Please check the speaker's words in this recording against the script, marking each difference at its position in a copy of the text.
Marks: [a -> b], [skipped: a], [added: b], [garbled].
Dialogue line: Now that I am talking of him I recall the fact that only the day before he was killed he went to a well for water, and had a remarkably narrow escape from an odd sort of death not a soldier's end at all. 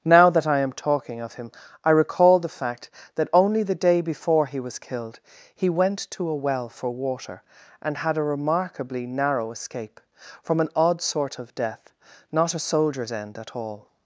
Now that I am talking of him I recall the fact that only the day before he was killed he went to a well for water, and had a remarkably narrow escape from an odd sort of death not a soldier's end at all.